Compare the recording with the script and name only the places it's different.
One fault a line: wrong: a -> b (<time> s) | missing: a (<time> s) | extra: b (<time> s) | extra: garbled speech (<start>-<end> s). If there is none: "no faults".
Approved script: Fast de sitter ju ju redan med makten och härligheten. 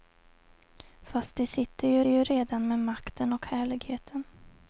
no faults